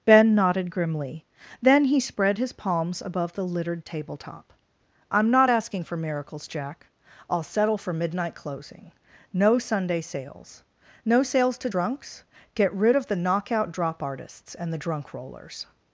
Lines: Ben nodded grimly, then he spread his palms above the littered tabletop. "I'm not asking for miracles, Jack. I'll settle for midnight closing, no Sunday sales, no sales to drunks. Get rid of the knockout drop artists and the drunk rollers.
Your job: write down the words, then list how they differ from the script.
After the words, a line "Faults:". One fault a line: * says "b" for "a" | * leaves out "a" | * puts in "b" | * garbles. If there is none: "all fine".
Ben nodded grimly, then he spread his palms above the littered tabletop. "I'm not asking for miracles, Jack. I'll settle for midnight closing, no Sunday sales, no sales to drunks. Get rid of the knockout drop artists and the drunk rollers.
Faults:
all fine